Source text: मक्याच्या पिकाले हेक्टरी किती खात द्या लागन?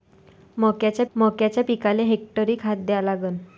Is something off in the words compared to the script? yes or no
yes